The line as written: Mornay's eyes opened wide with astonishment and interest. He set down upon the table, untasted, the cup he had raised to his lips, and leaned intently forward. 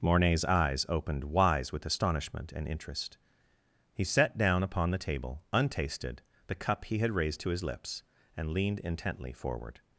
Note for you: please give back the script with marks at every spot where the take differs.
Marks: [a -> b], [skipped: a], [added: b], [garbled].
Mornay's eyes opened [wide -> wise] with astonishment and interest. He set down upon the table, untasted, the cup he had raised to his lips, and leaned intently forward.